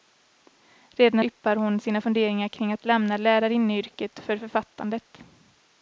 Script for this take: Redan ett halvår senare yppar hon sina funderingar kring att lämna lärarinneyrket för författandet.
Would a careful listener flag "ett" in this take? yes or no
yes